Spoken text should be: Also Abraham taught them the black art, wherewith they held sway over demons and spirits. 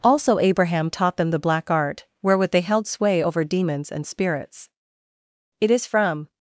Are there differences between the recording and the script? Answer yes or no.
yes